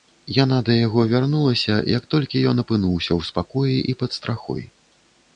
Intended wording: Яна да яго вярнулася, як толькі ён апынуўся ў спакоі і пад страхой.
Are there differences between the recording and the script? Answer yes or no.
no